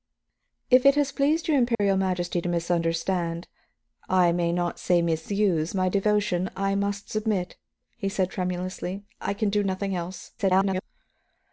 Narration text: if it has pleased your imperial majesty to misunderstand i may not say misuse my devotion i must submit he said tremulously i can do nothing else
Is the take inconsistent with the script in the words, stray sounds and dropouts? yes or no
yes